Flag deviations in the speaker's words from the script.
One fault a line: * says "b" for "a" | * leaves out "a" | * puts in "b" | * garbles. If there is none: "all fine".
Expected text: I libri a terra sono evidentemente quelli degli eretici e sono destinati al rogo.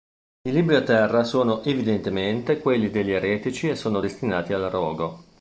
all fine